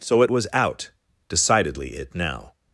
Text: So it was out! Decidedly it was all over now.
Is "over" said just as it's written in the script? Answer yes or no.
no